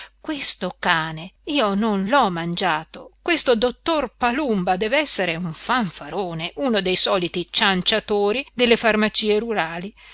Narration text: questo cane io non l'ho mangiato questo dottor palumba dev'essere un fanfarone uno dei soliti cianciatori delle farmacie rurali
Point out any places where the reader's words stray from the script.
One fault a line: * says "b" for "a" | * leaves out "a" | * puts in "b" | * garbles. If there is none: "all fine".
all fine